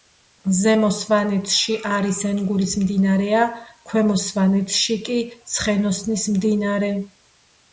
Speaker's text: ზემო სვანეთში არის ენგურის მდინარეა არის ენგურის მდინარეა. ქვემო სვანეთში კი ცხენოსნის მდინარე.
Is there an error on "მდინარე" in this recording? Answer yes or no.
no